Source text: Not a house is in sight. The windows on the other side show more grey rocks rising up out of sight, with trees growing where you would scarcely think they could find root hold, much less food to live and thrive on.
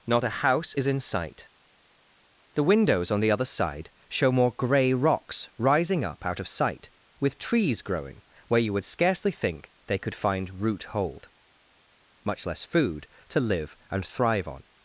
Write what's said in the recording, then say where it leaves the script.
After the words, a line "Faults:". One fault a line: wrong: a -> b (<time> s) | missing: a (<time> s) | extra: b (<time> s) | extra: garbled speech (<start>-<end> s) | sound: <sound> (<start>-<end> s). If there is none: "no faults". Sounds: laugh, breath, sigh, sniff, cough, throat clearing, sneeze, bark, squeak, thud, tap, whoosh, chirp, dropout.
Not a house is in sight. The windows on the other side show more grey rocks rising up out of sight, with trees growing where you would scarcely think they could find root hold, much less food to live and thrive on.
Faults:
no faults